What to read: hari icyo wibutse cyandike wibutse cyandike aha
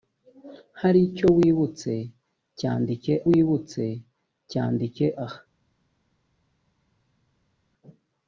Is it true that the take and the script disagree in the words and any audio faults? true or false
false